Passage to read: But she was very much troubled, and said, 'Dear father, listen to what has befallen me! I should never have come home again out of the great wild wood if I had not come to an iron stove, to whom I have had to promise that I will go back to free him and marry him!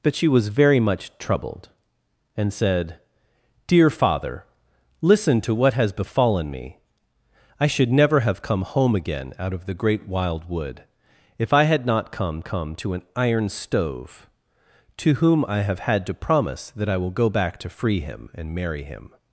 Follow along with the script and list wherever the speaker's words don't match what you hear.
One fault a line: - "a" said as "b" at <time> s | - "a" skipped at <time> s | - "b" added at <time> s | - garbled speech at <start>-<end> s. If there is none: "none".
- "come" added at 12.4 s